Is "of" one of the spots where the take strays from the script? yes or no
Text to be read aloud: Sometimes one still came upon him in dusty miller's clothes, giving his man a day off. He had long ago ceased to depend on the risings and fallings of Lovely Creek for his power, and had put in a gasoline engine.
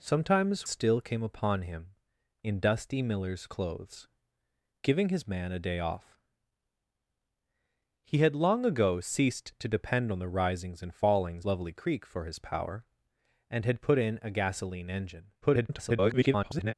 yes